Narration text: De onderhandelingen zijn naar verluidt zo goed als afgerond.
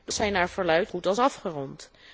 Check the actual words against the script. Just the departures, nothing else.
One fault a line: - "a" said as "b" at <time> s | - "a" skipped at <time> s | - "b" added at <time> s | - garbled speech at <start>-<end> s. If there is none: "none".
- "onderhandelingen" skipped at 0.1 s
- "zo" skipped at 0.9 s